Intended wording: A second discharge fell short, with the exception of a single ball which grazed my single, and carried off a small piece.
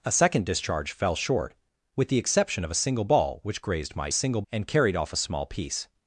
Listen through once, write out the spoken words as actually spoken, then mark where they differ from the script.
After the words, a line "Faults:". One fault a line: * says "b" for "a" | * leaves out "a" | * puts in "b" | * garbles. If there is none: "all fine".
A second discharge fell short, with the exception of a single ball which grazed my single, and carried off a small piece.
Faults:
all fine